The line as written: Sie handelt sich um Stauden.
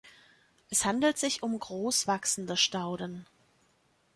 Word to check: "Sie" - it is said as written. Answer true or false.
false